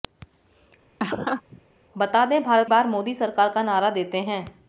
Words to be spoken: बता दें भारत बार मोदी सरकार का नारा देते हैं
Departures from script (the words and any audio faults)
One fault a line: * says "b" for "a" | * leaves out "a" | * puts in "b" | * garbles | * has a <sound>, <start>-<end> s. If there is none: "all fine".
* has a laugh, 1.0-1.6 s